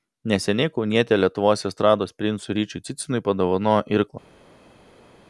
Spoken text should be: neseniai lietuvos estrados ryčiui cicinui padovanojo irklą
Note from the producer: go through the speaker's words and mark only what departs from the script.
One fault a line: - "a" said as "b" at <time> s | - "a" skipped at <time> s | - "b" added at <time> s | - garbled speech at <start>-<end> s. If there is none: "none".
- "kaunietė" added at 0.8 s
- "princui" added at 2.2 s